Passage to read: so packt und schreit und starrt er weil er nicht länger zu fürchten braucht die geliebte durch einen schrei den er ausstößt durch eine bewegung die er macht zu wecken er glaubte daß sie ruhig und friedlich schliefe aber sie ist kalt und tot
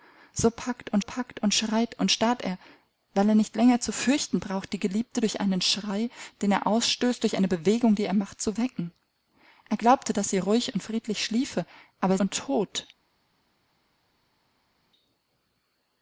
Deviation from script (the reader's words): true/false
true